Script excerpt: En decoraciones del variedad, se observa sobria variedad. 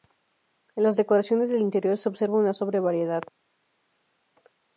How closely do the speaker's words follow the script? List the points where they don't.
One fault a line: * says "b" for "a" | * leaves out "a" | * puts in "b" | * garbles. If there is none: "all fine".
* puts in "las"
* says "interior" for "variedad"
* puts in "una"